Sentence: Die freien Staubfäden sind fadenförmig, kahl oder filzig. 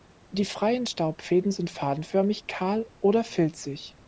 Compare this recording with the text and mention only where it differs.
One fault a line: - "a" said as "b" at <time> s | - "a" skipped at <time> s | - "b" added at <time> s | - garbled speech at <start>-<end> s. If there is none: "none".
none